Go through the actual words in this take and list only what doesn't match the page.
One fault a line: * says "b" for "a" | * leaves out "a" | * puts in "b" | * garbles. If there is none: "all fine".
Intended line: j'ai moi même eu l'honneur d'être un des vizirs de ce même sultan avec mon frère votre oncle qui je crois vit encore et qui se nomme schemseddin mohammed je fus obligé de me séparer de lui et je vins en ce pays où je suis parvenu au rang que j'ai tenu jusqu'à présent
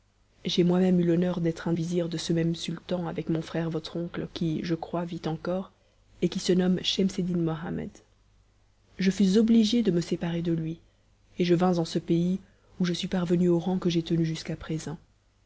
* leaves out "des"